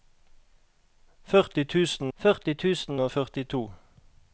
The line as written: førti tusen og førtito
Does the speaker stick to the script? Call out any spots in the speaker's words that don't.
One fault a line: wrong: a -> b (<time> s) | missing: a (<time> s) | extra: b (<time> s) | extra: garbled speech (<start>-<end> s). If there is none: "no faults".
extra: førti tusen (2.1 s)